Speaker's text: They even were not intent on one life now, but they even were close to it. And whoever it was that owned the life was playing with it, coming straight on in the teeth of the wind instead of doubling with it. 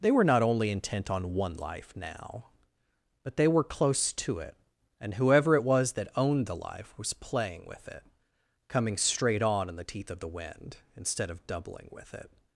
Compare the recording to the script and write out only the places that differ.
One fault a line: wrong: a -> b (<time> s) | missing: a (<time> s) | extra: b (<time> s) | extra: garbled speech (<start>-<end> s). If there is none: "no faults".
missing: even (0.1 s)
extra: only (0.4 s)
missing: even (3.5 s)